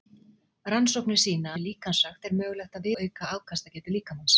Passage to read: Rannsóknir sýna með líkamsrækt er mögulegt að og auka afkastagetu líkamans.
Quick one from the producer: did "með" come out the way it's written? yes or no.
yes